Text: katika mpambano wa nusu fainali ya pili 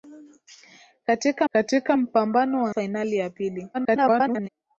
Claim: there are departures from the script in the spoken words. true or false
true